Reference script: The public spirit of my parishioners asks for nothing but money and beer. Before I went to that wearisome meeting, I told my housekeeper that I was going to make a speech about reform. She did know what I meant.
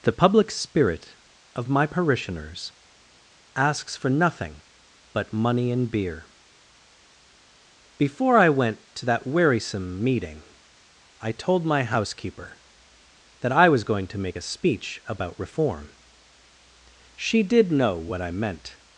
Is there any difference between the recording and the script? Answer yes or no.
no